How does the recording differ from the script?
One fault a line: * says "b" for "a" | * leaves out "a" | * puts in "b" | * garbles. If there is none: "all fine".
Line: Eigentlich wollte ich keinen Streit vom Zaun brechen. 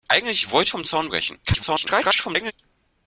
* leaves out "ich keinen Streit"
* garbles